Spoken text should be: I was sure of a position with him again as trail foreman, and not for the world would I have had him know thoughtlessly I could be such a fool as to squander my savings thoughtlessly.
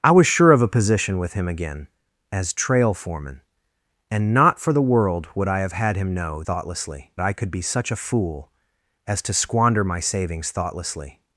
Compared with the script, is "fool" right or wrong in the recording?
right